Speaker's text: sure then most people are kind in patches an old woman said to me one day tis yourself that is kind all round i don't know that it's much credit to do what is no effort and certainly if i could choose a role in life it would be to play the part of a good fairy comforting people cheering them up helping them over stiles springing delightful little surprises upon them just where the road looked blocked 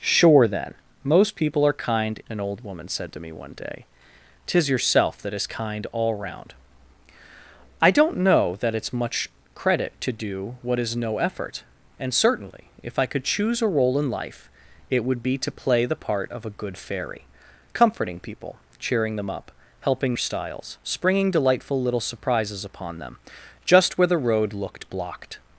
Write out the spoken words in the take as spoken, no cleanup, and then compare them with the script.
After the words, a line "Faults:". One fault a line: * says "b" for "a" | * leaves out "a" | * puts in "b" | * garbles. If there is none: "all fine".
sure then most people are kind an old woman said to me one day tis yourself that is kind all round i don't know that it's much credit to do what is no effort and certainly if i could choose a role in life it would be to play the part of a good fairy comforting people cheering them up helping stiles springing delightful little surprises upon them just where the road looked blocked
Faults:
* leaves out "in patches"
* leaves out "them over"